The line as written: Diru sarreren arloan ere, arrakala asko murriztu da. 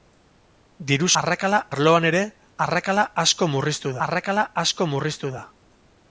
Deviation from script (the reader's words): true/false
true